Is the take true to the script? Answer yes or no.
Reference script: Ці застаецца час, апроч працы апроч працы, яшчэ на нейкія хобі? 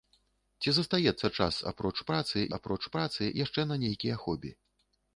yes